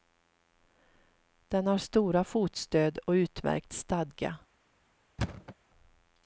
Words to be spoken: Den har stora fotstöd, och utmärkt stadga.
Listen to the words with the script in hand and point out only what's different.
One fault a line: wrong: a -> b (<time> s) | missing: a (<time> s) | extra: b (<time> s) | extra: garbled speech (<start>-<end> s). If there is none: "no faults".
no faults